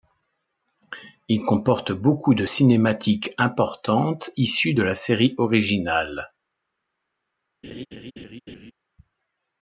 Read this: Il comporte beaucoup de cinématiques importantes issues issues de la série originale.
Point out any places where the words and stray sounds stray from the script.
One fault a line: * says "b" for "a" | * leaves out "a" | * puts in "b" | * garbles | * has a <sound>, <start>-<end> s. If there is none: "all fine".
* leaves out "issues"
* has a laugh, 7.6-8.7 s